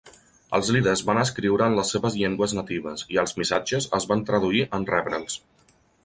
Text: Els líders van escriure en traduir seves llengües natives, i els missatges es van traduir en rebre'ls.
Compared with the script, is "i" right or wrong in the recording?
right